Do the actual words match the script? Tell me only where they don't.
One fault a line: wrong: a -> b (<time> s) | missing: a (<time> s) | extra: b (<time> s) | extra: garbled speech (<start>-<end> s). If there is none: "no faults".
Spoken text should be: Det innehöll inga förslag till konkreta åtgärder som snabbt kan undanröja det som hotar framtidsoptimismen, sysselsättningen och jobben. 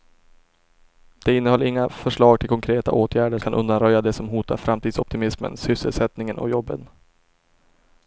missing: som snabbt (3.4 s)